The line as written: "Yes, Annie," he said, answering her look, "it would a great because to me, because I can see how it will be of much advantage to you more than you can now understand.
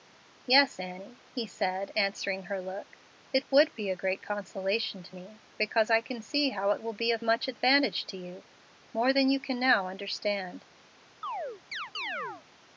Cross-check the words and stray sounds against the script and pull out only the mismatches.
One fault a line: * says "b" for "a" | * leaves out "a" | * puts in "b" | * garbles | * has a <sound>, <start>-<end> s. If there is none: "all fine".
* puts in "be"
* says "consolation" for "because"
* has a chirp, 11.2-12.4 s